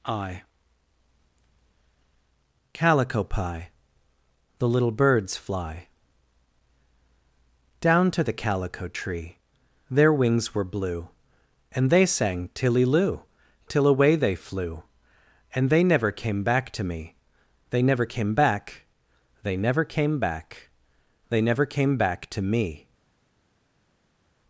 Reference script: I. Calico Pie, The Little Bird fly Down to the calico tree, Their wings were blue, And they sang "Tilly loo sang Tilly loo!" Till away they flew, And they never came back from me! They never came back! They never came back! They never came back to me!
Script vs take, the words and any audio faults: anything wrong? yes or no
yes